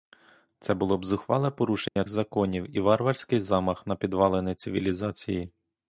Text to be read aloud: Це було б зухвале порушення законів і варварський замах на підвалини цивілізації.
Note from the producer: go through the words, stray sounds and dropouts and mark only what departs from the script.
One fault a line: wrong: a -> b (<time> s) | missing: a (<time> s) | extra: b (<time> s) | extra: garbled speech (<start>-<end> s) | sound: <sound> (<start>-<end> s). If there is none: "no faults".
sound: dropout (1.9-2.0 s)